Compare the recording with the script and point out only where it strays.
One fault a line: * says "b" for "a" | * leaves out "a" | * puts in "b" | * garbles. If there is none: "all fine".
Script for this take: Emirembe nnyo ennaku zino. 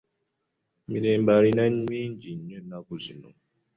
* puts in "alina mingi"